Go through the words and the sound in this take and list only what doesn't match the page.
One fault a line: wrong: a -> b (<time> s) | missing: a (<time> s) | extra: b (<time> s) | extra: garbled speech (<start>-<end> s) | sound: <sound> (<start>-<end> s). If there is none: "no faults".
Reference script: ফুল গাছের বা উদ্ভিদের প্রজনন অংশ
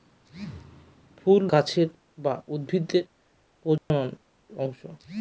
sound: dropout (3.8-3.9 s)